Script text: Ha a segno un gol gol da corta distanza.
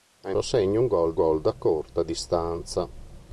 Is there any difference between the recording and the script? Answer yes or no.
no